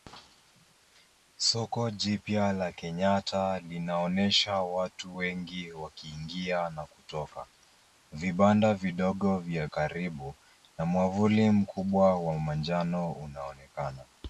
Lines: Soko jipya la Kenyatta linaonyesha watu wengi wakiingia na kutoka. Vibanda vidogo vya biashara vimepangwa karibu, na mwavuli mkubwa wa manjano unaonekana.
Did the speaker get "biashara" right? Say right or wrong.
wrong